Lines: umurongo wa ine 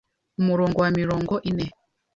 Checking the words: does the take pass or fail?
fail